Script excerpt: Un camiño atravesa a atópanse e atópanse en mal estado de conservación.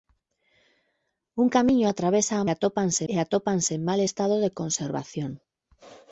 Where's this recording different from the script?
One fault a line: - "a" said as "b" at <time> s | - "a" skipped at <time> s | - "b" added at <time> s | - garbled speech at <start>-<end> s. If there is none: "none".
none